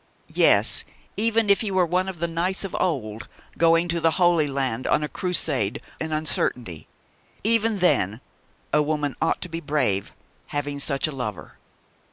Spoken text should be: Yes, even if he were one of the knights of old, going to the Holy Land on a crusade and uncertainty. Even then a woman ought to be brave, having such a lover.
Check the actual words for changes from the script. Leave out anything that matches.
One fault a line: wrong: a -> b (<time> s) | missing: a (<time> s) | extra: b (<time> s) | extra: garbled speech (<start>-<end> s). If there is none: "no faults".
no faults